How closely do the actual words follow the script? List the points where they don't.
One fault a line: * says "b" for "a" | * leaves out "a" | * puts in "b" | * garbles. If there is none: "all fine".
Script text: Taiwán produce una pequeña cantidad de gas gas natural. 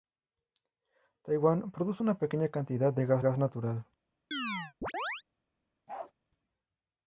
all fine